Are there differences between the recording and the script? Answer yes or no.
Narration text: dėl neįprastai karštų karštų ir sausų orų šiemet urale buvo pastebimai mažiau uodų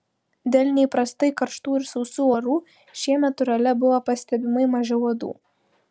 yes